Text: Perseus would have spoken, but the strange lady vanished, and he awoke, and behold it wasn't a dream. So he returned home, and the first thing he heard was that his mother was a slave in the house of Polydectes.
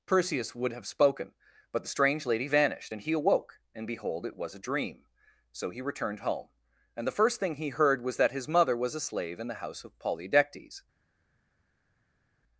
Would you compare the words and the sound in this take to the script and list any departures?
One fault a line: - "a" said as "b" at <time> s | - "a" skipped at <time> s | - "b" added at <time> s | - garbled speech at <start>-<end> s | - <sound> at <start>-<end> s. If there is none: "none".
- "wasn't" said as "was" at 4.4 s